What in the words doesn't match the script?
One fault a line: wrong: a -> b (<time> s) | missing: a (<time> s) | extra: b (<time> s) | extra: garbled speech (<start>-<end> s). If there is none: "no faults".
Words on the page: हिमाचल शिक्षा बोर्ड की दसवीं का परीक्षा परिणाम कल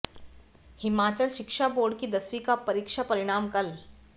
no faults